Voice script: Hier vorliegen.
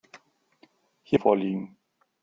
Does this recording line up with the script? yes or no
yes